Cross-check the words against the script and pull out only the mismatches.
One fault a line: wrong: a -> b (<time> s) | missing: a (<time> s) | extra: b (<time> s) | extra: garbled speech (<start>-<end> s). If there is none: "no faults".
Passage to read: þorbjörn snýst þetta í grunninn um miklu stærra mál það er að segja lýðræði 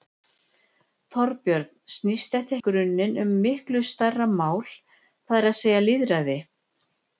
no faults